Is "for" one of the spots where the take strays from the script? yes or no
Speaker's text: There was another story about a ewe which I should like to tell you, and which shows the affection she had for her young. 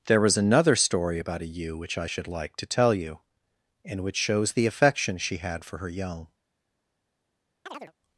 no